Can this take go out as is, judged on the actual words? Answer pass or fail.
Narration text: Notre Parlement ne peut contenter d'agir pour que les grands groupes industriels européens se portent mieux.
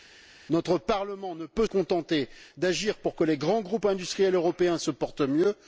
pass